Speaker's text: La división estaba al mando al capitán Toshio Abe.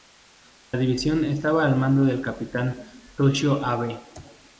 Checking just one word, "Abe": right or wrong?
right